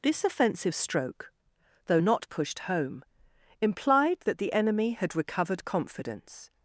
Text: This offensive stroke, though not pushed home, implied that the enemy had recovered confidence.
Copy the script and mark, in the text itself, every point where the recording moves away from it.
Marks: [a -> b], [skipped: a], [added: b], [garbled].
This offensive stroke, though not pushed home, implied that the enemy had recovered confidence.